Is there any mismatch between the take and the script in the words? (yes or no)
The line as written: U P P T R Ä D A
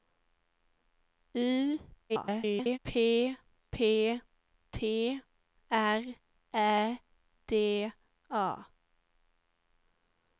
yes